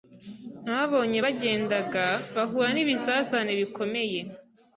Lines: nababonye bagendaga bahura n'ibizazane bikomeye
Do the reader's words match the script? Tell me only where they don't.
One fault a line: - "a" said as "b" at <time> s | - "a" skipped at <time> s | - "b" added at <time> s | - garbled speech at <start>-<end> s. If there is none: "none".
none